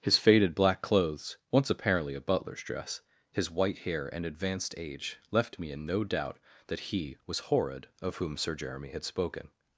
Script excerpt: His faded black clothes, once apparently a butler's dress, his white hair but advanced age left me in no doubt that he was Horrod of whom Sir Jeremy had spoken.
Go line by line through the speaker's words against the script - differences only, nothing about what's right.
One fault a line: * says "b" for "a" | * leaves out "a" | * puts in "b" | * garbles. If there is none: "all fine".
* says "and" for "but"